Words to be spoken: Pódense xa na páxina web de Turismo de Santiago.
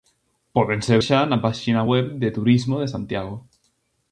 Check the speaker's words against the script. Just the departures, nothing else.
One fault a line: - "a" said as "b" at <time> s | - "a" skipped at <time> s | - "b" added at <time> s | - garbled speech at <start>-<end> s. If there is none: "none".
none